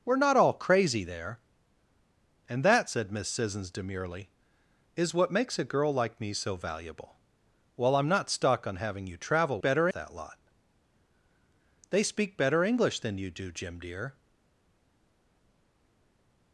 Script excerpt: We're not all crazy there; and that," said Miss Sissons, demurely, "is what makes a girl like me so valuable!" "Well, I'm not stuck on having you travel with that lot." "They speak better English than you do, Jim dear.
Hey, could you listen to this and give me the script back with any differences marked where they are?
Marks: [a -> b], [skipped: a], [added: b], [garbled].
We're not all crazy there; and that," said Miss Sissons, demurely, "is what makes a girl like me so valuable!" "Well, I'm not stuck on having you travel [with -> better] that lot." "They speak better English than you do, Jim dear.